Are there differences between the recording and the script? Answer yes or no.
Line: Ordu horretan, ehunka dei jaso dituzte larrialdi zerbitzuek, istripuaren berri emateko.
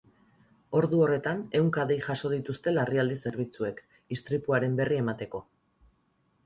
no